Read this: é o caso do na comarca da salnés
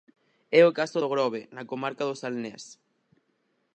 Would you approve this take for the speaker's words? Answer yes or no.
no